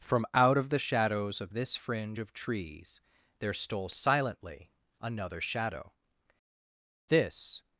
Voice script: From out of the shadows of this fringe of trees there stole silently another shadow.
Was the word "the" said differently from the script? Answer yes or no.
no